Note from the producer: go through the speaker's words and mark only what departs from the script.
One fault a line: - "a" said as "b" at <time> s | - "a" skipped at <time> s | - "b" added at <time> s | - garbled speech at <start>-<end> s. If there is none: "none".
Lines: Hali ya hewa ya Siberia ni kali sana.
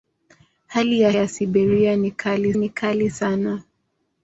- "hewa" skipped at 1.1 s
- "ni kali" added at 2.6 s